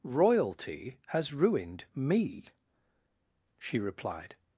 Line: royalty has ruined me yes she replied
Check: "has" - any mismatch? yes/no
no